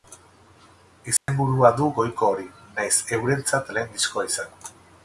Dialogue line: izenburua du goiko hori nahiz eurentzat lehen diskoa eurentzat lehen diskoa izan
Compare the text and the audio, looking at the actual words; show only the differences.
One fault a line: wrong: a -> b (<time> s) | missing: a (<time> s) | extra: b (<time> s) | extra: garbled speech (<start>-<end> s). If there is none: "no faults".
missing: eurentzat lehen diskoa (4.3 s)